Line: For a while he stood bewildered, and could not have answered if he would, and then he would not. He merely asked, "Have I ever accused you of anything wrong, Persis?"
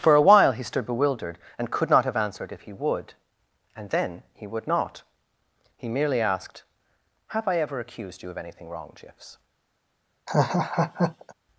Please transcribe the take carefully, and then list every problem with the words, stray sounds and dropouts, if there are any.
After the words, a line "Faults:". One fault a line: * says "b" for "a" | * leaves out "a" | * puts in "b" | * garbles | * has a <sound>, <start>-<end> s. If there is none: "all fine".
For a while he stood bewildered, and could not have answered if he would, and then he would not. He merely asked, "Have I ever accused you of anything wrong, Jiffs?"
Faults:
* says "Jiffs" for "Persis"
* has a laugh, 10.3-11.3 s